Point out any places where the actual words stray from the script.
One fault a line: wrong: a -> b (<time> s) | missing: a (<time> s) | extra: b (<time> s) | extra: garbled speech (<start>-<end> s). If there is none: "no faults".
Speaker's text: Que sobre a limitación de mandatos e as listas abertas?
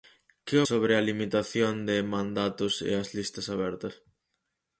no faults